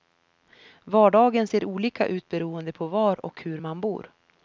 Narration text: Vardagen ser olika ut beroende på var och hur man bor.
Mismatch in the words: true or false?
false